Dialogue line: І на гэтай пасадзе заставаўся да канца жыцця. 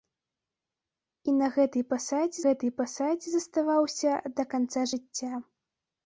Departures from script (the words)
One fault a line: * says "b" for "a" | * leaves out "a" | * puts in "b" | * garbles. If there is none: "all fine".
* puts in "гэтай пасадзе"